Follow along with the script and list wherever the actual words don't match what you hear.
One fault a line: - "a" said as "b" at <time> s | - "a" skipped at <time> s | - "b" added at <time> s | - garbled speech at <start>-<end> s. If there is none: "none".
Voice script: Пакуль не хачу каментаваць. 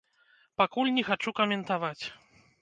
none